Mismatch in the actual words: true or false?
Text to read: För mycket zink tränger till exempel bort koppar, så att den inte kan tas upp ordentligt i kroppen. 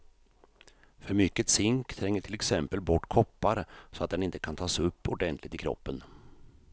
false